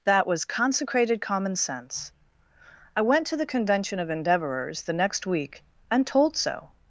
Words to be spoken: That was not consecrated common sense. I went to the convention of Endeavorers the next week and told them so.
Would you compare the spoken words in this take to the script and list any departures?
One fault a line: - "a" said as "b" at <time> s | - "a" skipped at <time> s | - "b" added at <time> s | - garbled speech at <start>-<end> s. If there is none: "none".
- "not" skipped at 0.5 s
- "them" skipped at 6.3 s